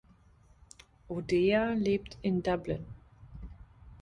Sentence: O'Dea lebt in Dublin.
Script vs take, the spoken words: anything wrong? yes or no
no